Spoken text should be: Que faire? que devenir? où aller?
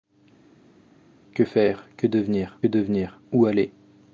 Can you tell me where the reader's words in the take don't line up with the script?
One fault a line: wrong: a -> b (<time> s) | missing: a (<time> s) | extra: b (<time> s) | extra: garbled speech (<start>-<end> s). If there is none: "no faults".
extra: devenir (2.7 s)